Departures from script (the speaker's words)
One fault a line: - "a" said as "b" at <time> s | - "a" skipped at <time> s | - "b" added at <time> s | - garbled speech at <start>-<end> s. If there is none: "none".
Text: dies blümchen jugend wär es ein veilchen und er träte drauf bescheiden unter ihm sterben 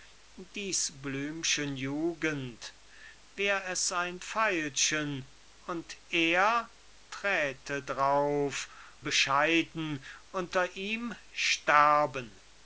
none